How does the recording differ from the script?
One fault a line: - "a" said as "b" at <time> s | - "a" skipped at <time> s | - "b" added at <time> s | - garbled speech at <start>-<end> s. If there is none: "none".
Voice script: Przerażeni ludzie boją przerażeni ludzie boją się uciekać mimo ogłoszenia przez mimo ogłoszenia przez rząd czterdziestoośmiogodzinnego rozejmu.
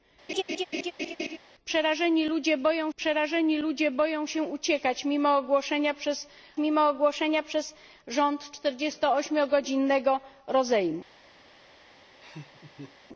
none